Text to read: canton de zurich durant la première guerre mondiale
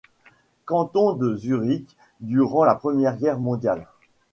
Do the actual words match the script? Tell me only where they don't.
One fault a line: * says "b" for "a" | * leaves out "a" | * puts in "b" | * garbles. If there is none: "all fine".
all fine